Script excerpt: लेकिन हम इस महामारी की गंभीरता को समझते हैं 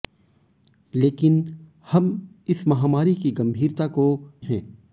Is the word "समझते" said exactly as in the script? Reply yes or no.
no